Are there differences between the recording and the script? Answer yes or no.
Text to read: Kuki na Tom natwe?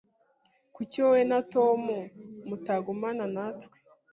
yes